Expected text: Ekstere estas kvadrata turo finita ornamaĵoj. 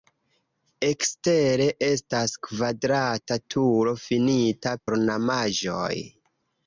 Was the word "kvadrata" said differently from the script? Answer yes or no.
no